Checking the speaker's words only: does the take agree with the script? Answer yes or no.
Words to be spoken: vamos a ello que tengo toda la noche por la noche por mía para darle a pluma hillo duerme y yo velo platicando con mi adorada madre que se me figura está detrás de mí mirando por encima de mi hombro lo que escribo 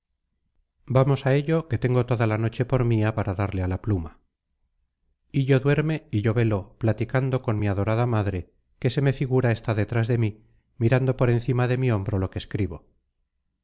no